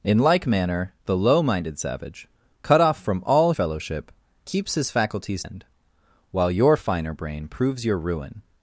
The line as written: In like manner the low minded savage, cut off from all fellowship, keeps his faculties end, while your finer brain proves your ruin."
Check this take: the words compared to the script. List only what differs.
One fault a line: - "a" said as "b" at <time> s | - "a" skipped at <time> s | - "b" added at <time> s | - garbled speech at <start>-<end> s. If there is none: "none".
none